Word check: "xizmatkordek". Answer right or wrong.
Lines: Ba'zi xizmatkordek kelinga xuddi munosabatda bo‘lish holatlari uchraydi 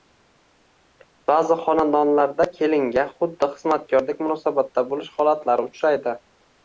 wrong